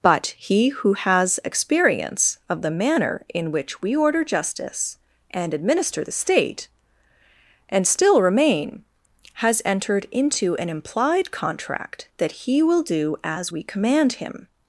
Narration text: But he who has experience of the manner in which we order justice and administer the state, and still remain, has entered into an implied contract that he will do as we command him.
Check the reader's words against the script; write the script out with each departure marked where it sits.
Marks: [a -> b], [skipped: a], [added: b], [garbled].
But he who has experience of the manner in which we order justice and administer the state, and still remain, has entered into an implied contract that he will do as we command him.